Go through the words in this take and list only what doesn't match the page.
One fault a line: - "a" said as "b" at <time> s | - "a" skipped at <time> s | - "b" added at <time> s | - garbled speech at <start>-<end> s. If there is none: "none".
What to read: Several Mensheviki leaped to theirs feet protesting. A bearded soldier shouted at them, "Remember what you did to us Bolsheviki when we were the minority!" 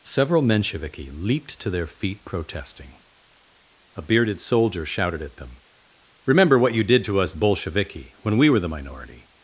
- "theirs" said as "their" at 1.7 s